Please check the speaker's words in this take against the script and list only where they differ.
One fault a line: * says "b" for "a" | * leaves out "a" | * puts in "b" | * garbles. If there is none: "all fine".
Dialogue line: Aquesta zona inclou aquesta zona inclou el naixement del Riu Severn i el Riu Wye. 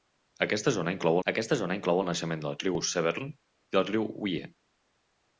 all fine